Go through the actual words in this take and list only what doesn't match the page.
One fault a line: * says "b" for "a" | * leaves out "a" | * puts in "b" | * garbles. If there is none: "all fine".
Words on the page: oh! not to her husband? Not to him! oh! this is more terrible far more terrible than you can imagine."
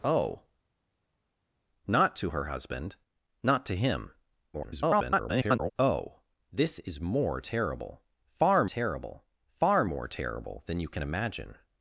* garbles
* puts in "terrible far"